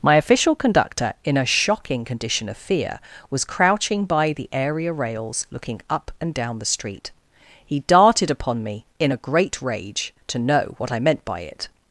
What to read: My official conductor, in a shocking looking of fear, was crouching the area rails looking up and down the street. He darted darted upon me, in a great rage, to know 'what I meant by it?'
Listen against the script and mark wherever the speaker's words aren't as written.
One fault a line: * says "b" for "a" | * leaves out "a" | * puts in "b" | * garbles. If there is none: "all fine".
* says "condition" for "looking"
* puts in "by"
* leaves out "darted"